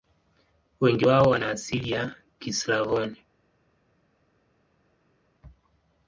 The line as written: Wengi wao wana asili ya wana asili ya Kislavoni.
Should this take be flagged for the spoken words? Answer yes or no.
yes